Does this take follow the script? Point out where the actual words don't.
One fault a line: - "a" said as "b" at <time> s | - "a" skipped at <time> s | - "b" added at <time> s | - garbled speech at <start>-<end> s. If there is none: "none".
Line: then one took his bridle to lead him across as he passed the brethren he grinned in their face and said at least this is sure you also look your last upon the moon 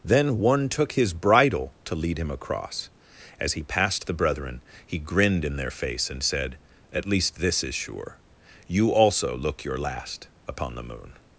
none